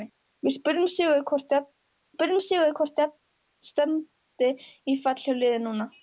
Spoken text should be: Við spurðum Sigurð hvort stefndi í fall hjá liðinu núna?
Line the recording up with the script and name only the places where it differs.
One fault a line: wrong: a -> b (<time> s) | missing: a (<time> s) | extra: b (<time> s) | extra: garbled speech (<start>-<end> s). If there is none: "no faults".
extra: spurðum Sigurð hvort (2.1 s)